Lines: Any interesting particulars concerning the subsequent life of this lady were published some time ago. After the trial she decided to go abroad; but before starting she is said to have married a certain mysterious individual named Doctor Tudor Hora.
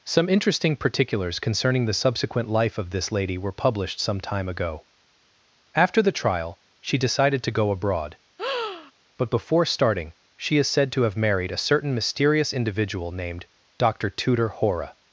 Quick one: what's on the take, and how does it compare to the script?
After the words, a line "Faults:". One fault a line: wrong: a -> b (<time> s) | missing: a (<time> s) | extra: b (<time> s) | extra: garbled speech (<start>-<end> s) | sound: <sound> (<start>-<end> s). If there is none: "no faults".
Some interesting particulars concerning the subsequent life of this lady were published some time ago. After the trial she decided to go abroad; but before starting she is said to have married a certain mysterious individual named Doctor Tudor Hora.
Faults:
wrong: Any -> Some (0.0 s)
sound: breath (8.4-8.9 s)